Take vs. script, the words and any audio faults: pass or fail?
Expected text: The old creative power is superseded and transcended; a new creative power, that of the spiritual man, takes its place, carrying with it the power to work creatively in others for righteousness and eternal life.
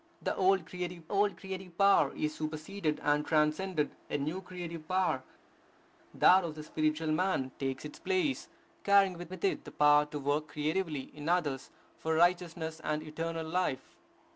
fail